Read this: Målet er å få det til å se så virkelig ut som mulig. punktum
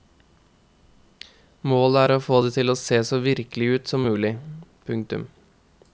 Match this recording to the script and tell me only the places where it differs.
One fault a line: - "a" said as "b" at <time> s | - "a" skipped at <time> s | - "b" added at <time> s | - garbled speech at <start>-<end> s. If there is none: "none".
none